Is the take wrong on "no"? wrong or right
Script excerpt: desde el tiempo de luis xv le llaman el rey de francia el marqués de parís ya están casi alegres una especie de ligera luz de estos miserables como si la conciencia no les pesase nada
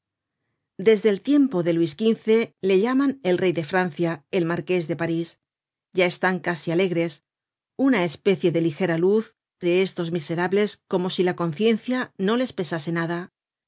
right